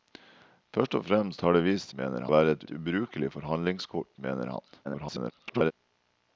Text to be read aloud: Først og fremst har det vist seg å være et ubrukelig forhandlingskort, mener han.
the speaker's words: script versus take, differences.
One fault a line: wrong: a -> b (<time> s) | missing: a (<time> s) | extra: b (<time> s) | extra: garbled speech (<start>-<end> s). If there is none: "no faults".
wrong: seg -> mener (1.9 s)
extra: et (2.6 s)
extra: garbled speech (4.8-5.7 s)